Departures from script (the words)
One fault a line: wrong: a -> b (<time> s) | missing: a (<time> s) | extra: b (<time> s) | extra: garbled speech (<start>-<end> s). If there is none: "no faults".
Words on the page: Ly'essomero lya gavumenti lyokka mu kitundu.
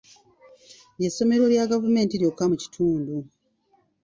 no faults